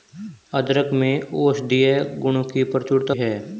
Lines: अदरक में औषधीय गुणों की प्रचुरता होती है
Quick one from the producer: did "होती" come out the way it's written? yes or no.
no